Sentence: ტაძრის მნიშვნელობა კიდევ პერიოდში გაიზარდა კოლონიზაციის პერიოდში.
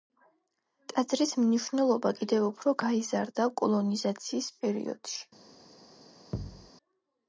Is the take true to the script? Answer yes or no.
no